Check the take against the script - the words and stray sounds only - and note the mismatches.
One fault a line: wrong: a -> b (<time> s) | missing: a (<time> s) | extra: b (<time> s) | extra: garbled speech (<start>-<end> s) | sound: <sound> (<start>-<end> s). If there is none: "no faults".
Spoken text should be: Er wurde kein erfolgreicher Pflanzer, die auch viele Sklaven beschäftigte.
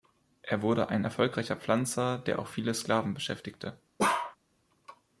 wrong: kein -> ein (0.9 s)
wrong: die -> der (2.2 s)
sound: bark (4.0-4.4 s)